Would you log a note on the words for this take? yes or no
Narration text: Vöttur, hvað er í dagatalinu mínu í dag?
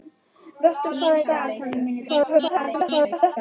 yes